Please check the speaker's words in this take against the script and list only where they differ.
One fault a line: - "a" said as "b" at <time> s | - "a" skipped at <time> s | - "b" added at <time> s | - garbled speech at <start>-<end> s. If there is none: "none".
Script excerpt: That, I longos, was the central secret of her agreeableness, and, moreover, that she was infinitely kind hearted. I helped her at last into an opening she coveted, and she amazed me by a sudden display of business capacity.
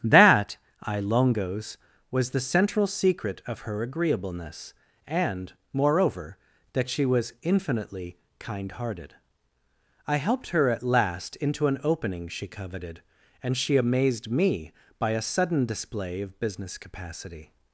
none